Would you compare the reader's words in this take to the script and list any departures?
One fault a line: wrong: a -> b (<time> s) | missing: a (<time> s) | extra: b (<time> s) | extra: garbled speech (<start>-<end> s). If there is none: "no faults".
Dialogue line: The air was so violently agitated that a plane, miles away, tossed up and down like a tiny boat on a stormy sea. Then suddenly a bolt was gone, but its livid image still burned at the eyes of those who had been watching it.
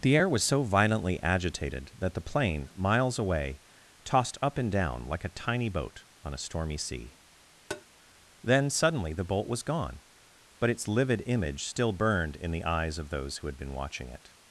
wrong: a -> the (2.1 s)
wrong: a -> the (9.1 s)
wrong: at -> in (12.4 s)